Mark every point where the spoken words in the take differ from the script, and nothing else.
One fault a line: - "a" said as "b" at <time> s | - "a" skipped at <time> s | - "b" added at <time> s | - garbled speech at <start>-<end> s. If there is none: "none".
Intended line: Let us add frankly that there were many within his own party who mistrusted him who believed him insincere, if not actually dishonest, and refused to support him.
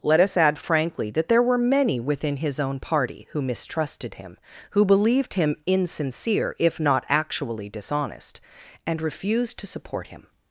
none